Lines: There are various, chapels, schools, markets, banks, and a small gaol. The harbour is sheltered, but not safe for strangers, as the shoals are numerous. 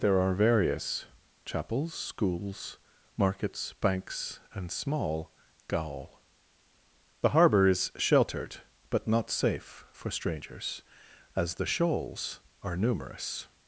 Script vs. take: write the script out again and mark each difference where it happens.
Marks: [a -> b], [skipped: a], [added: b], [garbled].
There are various, chapels, schools, markets, banks, and [skipped: a] small gaol. The harbour is sheltered, but not safe for strangers, as the shoals are numerous.